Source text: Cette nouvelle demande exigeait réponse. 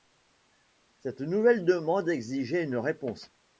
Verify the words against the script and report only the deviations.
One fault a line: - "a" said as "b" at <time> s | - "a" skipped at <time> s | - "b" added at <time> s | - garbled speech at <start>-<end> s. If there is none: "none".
- "une" added at 2.6 s